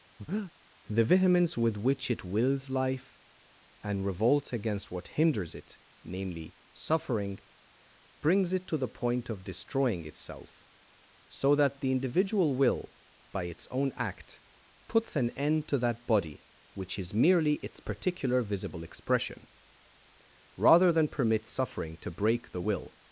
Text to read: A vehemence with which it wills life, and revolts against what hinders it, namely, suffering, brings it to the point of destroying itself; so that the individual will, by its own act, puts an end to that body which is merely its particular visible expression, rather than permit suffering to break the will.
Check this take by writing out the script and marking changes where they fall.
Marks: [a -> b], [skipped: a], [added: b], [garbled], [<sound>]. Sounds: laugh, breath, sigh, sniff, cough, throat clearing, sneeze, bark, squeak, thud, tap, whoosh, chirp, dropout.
[breath] [A -> The] vehemence with which it wills life, and revolts against what hinders it, namely, suffering, brings it to the point of destroying itself; so that the individual will, by its own act, puts an end to that body which is merely its particular visible expression, rather than permit suffering to break the will.